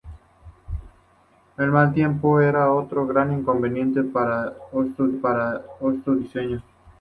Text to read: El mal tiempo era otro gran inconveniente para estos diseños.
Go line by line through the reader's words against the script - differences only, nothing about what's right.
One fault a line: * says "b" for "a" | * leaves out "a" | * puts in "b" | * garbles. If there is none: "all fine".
* puts in "para estos"